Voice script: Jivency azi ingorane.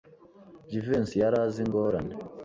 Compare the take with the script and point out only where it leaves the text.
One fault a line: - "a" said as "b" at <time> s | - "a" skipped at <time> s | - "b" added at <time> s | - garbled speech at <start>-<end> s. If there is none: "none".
- "yari" added at 1.2 s